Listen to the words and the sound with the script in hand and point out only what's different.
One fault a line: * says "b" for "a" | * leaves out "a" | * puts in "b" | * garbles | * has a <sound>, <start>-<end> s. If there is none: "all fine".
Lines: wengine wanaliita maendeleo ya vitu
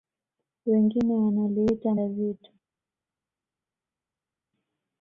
* leaves out "maendeleo"